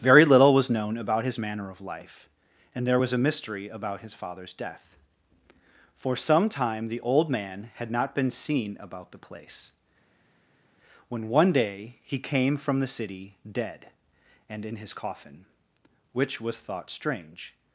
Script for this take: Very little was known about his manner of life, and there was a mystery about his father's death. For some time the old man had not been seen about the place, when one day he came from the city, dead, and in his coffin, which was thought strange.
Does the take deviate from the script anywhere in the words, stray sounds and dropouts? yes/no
no